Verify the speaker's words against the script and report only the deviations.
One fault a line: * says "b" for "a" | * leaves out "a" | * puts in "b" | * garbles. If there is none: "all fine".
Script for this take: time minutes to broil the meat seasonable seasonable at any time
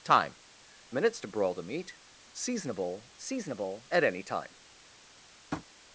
all fine